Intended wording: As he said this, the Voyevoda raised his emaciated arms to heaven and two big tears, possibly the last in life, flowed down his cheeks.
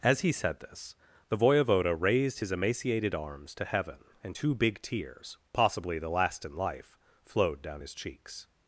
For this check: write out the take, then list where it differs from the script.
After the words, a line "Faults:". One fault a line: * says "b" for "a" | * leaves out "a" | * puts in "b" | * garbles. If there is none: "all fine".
As he said this, the Voyevoda raised his emaciated arms to heaven and two big tears, possibly the last in life, flowed down his cheeks.
Faults:
all fine